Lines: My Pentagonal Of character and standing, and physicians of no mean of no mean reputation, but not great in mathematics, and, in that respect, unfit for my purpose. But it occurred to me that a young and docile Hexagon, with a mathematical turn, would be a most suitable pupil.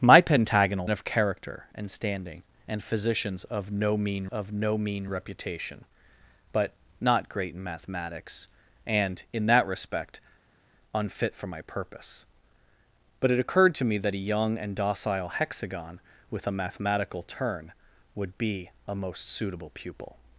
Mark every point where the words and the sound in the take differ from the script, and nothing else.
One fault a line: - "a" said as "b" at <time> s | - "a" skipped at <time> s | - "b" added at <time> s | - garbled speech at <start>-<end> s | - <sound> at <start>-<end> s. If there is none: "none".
none